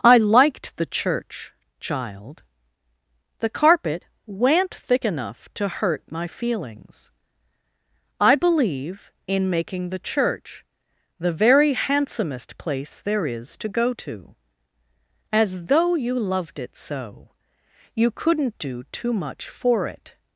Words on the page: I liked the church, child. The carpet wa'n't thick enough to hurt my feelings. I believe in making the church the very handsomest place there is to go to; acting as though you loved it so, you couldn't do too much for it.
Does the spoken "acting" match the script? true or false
false